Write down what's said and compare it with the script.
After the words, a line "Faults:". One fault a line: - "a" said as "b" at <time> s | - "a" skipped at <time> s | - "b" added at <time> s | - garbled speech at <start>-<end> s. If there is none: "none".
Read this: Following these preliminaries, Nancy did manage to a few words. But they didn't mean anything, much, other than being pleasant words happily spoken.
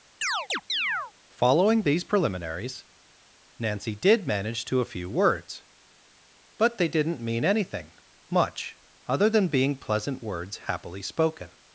Following these preliminaries, Nancy did manage to a few words. But they didn't mean anything, much, other than being pleasant words happily spoken.
Faults:
none